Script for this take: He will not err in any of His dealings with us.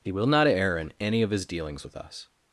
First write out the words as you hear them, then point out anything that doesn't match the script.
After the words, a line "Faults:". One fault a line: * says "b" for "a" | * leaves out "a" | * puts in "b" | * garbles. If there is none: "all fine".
He will not err in any of His dealings with us.
Faults:
all fine